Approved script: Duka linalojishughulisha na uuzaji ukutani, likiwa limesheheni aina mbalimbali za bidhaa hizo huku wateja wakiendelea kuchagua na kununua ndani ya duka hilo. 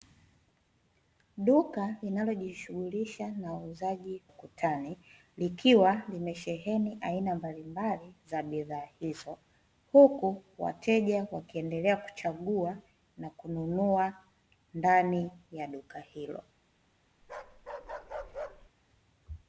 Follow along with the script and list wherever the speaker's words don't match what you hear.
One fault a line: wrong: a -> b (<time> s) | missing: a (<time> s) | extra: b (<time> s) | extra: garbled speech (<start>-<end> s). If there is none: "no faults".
no faults